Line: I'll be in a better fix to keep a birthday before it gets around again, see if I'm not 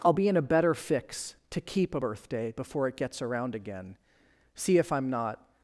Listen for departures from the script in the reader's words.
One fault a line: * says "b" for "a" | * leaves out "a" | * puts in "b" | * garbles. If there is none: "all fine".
all fine